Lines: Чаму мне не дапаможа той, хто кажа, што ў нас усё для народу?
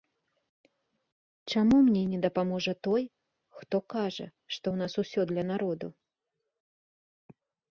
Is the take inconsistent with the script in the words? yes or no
no